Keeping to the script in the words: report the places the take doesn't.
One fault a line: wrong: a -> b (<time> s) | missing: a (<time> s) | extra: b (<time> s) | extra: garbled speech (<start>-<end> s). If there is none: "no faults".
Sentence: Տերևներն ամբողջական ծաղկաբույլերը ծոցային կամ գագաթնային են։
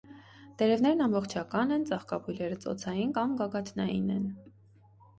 extra: են (1.8 s)